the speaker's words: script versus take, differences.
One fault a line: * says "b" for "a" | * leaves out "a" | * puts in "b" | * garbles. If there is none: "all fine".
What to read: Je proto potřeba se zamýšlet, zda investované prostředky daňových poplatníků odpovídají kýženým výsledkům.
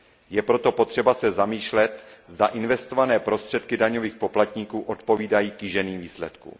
all fine